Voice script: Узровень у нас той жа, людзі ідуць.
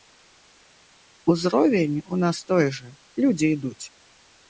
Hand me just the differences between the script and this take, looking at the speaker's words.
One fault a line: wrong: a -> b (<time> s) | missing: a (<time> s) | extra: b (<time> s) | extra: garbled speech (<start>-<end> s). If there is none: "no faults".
no faults